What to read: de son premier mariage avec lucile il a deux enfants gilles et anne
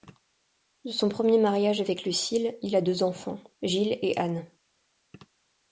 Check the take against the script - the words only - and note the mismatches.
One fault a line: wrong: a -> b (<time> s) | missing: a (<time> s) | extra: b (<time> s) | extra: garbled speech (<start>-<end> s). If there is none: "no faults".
no faults